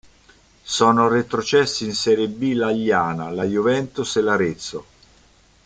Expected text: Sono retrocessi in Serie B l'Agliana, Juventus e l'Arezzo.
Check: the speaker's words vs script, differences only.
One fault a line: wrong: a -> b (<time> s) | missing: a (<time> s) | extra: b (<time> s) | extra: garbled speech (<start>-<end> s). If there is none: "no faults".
extra: la (3.3 s)